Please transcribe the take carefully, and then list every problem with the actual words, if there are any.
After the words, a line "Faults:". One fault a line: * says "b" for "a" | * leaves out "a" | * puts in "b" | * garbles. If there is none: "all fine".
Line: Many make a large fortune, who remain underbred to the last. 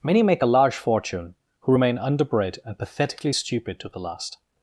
Many make a large fortune, who remain underbred and pathetically stupid to the last.
Faults:
* puts in "and pathetically stupid"